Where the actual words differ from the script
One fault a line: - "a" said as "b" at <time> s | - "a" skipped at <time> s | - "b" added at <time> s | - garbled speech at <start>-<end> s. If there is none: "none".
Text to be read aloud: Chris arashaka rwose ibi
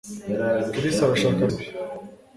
- "rwose" skipped at 1.4 s